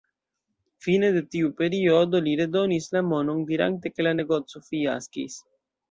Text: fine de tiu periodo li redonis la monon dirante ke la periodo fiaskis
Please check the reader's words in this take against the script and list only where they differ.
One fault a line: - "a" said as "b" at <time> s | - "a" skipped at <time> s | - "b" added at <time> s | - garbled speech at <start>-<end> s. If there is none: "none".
- "periodo" said as "negoco" at 4.2 s